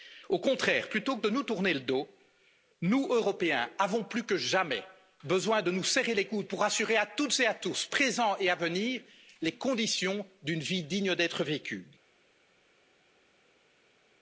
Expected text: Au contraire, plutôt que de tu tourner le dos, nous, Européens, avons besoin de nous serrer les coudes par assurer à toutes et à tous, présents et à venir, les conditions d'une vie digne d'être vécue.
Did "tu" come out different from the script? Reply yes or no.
yes